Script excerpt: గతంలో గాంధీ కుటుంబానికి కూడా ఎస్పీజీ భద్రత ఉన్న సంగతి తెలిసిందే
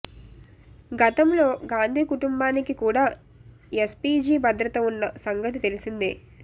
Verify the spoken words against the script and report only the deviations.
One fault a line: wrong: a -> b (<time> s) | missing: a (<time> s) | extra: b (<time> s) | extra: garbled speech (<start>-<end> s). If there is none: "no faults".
no faults